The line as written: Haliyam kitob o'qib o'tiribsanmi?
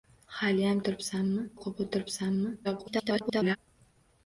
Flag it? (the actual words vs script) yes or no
yes